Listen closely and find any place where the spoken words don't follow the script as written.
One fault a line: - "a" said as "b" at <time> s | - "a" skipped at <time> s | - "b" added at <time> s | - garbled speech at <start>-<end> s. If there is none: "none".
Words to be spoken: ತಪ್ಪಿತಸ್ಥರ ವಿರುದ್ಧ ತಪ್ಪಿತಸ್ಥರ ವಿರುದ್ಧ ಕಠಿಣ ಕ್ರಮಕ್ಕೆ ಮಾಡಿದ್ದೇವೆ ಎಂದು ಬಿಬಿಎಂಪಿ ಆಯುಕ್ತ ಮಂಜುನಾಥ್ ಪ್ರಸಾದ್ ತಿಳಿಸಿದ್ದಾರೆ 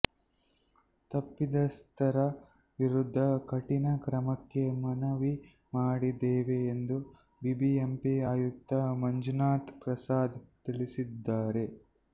- "ತಪ್ಪಿತಸ್ಥರ ವಿರುದ್ಧ" skipped at 3.2 s
- "ಮನವಿ" added at 4.8 s